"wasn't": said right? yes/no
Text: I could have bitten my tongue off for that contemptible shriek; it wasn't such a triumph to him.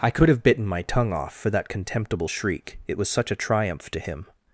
no